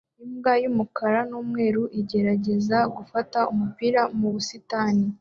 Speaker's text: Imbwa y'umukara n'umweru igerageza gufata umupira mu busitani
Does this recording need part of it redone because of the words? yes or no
no